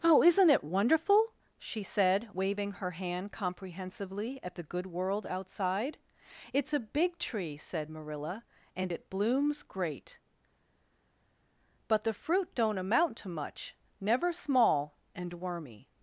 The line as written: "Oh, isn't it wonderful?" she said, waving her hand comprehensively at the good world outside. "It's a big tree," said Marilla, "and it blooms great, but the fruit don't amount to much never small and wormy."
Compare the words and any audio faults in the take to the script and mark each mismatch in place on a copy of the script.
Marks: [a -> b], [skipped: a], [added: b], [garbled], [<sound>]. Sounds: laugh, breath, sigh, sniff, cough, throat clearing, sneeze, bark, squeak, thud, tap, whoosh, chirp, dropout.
"Oh, isn't it wonderful?" she said, waving her hand comprehensively at the good world outside. "It's a big tree," said Marilla, "and it blooms great, but the fruit don't amount to much never small and wormy."